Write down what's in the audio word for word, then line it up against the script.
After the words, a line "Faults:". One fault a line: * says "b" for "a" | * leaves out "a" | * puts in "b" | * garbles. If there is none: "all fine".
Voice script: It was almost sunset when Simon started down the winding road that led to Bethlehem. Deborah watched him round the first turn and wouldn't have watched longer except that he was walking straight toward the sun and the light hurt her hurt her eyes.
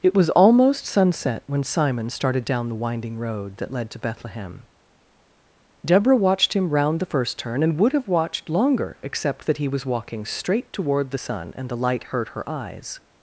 It was almost sunset when Simon started down the winding road that led to Bethlehem. Deborah watched him round the first turn and would have watched longer except that he was walking straight toward the sun and the light hurt her eyes.
Faults:
* says "would" for "wouldn't"
* leaves out "hurt her"